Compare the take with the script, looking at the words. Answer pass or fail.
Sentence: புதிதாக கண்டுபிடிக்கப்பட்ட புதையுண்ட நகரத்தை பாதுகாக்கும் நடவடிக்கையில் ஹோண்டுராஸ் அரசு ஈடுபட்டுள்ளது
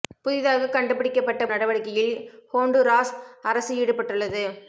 fail